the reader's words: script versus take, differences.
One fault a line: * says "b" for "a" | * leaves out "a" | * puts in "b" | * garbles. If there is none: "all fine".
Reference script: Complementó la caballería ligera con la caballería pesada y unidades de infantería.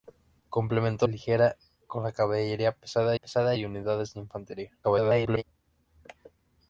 * leaves out "la caballería"
* puts in "pesada"
* garbles